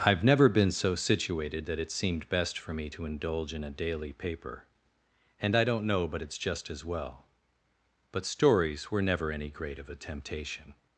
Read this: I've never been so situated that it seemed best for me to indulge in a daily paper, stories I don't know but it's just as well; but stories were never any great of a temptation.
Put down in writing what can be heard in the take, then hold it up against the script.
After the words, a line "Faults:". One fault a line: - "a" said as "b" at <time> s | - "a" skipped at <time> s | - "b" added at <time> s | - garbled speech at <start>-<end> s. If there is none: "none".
I've never been so situated that it seemed best for me to indulge in a daily paper, and I don't know but it's just as well; but stories were never any great of a temptation.
Faults:
- "stories" said as "and" at 5.4 s